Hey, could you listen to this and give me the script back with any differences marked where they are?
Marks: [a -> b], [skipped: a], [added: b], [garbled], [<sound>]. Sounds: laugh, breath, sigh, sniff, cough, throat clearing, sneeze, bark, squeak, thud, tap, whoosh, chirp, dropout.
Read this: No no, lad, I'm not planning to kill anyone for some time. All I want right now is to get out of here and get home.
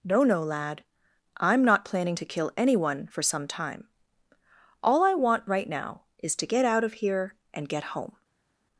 No no, lad, I'm not planning to kill anyone for some time. All I want right now is to get out of here and get home.